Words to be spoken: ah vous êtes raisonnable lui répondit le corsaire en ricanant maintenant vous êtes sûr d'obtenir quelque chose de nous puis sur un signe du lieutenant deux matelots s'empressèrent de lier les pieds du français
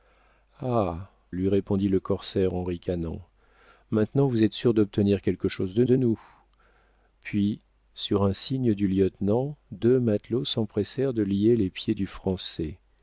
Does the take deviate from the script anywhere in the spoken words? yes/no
yes